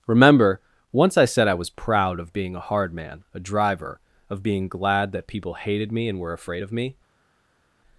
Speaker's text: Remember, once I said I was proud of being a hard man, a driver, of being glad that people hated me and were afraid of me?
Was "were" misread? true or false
false